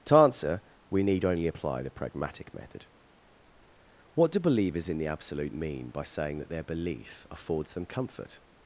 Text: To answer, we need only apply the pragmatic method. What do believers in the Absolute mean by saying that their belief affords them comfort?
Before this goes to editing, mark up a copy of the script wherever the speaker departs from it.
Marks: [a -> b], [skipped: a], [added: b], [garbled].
To answer, we need only apply the pragmatic method. What do believers in the Absolute mean by saying that their belief affords them comfort?